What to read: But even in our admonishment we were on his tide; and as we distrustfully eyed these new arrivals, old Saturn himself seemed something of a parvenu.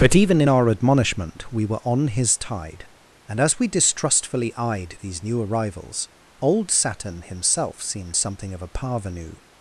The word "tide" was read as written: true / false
true